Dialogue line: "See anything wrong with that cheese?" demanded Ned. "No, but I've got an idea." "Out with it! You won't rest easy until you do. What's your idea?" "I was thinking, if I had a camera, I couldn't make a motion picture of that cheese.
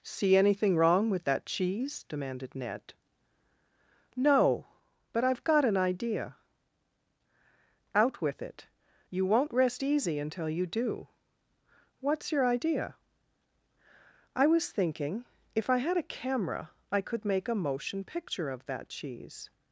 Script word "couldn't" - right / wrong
wrong